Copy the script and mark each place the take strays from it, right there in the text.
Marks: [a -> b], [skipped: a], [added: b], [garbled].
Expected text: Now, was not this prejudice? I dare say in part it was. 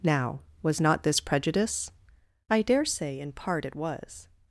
Now, was not this prejudice? I dare say in part it was.